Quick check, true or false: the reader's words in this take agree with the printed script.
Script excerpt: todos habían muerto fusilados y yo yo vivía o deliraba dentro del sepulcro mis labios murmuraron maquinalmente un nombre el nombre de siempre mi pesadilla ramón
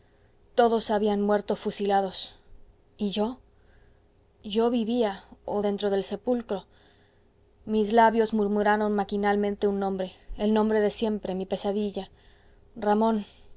false